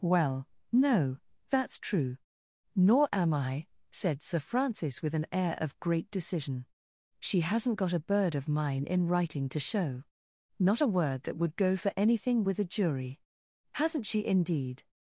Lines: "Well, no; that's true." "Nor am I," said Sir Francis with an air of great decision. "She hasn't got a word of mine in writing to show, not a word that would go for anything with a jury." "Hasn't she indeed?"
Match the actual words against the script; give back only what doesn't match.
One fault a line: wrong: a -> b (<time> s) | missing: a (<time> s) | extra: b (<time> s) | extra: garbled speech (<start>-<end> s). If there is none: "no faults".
wrong: word -> bird (8.0 s)